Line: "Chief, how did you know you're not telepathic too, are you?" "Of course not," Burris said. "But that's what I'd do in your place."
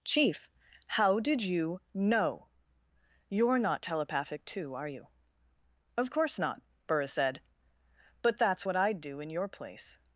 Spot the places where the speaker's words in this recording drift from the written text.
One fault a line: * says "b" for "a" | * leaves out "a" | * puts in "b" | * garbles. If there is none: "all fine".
all fine